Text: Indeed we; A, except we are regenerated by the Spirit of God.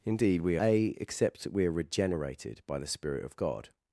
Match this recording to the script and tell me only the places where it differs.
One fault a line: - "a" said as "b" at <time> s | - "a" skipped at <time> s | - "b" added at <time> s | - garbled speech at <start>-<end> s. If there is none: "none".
none